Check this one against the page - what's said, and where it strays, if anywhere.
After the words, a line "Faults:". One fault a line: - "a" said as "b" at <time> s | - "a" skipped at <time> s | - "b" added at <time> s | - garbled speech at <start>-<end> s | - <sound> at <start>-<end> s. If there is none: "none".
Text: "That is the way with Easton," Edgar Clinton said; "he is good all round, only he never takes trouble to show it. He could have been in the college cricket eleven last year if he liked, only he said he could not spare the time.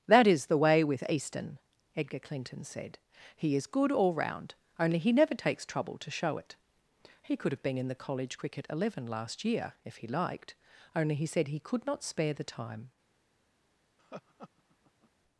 "That is the way with Easton," Edgar Clinton said; "he is good all round, only he never takes trouble to show it. He could have been in the college cricket eleven last year if he liked, only he said he could not spare the time.
Faults:
- laugh at 14.0-15.1 s